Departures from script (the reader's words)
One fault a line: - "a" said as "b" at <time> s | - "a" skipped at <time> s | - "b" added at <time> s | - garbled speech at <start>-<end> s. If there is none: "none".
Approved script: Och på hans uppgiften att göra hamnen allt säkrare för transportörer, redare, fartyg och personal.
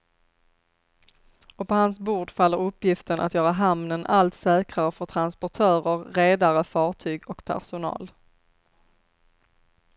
- "bord faller" added at 2.0 s